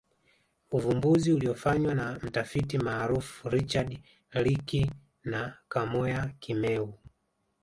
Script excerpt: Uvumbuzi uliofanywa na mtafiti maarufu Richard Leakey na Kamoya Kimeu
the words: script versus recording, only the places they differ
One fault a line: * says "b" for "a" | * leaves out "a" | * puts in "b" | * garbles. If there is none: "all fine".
all fine